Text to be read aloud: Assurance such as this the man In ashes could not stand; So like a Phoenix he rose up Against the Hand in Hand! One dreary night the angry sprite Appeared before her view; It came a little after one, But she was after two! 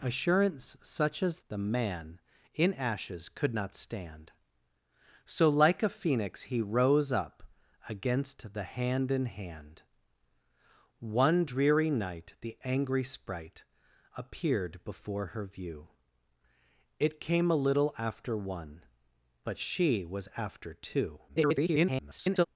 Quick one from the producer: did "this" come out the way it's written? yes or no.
no